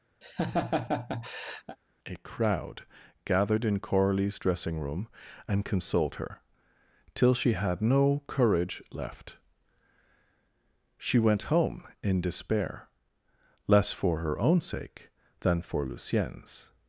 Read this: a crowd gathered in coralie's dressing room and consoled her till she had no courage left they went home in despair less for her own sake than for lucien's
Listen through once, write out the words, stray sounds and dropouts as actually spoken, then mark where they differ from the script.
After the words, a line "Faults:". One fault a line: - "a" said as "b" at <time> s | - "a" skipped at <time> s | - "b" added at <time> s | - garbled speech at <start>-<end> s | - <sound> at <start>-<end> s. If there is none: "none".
a crowd gathered in coralie's dressing room and consoled her till she had no courage left she went home in despair less for her own sake than for lucien's
Faults:
- laugh at 0.2-1.8 s
- "they" said as "she" at 11.0 s